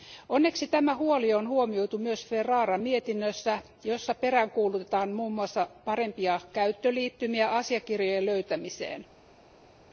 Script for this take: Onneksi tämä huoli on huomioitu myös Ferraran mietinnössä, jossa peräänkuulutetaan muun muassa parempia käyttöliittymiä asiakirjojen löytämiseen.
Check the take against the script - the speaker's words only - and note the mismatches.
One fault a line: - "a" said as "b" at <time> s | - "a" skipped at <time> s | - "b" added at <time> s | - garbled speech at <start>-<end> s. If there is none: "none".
none